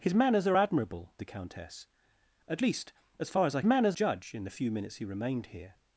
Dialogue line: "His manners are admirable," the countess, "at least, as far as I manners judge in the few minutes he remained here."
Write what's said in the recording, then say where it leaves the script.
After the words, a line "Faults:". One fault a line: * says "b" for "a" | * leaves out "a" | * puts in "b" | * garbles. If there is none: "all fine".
"His manners are admirable," the countess, "at least, as far as I manners judge in the few minutes he remained here."
Faults:
all fine